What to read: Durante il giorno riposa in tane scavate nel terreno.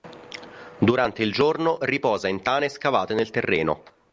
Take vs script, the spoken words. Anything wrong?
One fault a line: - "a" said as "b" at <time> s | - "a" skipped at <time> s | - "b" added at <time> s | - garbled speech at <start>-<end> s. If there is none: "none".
none